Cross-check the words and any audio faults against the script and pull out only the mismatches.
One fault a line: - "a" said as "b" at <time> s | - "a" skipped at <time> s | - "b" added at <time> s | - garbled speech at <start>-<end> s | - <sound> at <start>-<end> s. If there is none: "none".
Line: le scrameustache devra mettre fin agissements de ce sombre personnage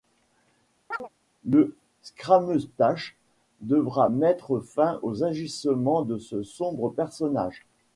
- chirp at 0.9-1.1 s
- "aux" added at 5.0 s